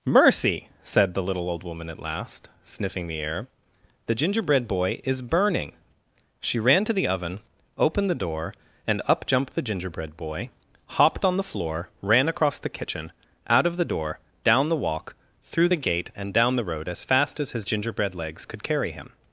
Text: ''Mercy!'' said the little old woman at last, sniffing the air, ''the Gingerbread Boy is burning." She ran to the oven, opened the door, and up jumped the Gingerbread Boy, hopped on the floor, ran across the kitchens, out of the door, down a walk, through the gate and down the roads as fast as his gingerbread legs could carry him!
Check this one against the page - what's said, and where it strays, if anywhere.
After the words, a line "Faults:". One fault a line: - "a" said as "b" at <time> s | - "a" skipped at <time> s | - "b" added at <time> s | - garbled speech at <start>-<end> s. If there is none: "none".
''Mercy!'' said the little old woman at last, sniffing the air, ''the Gingerbread Boy is burning." She ran to the oven, opened the door, and up jumped the Gingerbread Boy, hopped on the floor, ran across the kitchen, out of the door, down the walk, through the gate and down the road as fast as his gingerbread legs could carry him!
Faults:
- "kitchens" said as "kitchen" at 12.8 s
- "a" said as "the" at 14.7 s
- "roads" said as "road" at 16.6 s